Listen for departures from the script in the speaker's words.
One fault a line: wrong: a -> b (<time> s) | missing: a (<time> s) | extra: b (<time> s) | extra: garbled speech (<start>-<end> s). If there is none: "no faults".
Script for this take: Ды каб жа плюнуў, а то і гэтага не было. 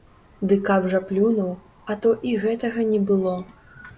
no faults